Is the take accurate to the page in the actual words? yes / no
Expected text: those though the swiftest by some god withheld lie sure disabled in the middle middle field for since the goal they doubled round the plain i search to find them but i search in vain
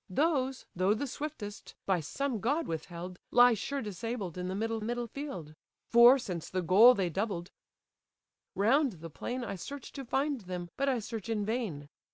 yes